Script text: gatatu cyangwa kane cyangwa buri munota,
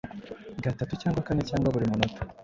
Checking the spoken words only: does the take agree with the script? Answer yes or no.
yes